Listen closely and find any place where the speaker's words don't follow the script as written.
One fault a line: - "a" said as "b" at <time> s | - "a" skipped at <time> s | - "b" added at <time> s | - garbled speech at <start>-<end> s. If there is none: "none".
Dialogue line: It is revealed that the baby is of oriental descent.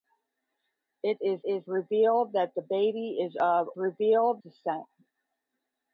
- "is" added at 1.4 s
- "oriental" said as "revealed" at 3.8 s